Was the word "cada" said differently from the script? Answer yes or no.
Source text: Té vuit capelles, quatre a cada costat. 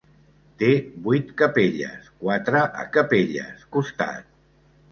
yes